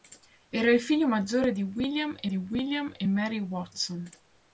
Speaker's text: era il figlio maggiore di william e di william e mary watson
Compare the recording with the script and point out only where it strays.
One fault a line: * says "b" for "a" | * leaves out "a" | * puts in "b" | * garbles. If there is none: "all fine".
all fine